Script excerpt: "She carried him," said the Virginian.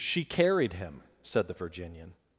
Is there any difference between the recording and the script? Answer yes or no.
no